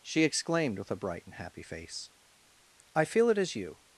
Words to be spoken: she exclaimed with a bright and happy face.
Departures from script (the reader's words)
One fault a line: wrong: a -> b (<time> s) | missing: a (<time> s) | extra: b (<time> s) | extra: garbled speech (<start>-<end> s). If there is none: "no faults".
extra: I feel it as you (2.9 s)